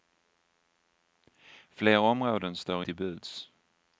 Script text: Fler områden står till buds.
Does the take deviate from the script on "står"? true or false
false